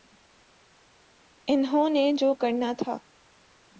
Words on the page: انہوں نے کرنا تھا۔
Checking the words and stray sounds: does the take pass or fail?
fail